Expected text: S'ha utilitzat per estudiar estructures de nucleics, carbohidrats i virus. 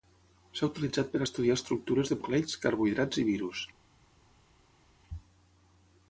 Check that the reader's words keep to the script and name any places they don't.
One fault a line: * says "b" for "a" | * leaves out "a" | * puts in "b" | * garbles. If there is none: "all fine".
all fine